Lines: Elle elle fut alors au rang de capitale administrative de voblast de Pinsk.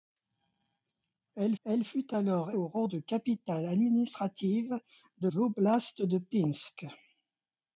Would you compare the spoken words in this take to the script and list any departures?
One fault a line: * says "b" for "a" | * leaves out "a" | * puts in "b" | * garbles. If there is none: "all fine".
all fine